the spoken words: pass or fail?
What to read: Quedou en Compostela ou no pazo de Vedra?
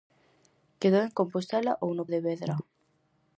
fail